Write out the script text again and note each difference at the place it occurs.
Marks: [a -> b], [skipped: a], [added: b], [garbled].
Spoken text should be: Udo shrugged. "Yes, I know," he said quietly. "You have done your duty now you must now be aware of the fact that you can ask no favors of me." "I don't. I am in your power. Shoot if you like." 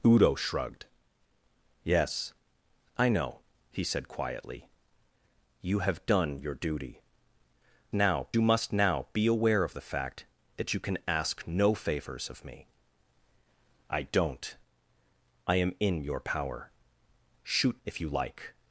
Udo shrugged. "Yes, I know," he said quietly. "You have done your duty now you must now be aware of the fact that you can ask no favors of me." "I don't. I am in your power. Shoot if you like."